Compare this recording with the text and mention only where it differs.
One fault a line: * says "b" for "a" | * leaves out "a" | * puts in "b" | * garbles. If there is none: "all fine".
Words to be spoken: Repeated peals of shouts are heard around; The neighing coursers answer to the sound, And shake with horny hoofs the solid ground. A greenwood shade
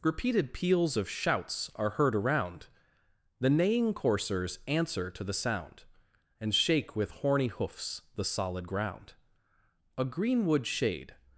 all fine